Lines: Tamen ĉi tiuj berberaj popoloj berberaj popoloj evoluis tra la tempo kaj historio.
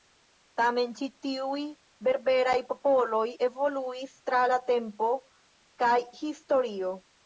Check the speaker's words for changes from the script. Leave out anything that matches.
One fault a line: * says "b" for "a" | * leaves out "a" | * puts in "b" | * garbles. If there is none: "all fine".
* leaves out "berberaj popoloj"